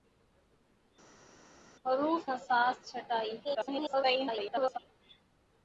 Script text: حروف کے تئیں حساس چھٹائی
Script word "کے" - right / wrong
wrong